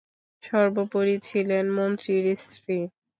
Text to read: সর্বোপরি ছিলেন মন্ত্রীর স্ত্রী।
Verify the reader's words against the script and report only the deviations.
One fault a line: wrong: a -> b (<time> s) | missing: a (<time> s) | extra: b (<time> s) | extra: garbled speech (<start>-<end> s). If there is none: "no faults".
no faults